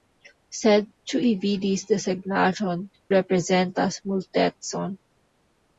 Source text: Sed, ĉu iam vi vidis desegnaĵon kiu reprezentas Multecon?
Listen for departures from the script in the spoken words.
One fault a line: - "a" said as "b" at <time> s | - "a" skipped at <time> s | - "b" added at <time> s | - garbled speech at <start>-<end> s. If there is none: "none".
- "iam" skipped at 1.2 s
- "kiu" skipped at 2.8 s